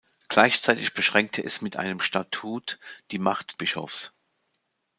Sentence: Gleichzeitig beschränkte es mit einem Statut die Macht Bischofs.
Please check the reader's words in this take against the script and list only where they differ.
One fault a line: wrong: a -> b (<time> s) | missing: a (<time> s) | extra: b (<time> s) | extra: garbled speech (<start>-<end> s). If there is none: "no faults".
no faults